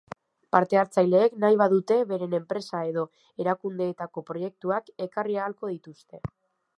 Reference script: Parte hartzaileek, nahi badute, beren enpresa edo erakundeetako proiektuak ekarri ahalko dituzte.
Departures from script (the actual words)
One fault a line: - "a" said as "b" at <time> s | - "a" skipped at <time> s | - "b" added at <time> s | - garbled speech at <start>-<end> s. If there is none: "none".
none